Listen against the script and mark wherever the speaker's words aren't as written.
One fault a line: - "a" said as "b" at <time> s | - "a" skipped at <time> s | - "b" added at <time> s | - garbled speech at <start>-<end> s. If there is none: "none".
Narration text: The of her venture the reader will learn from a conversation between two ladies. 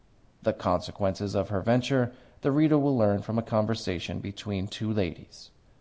- "consequences" added at 0.5 s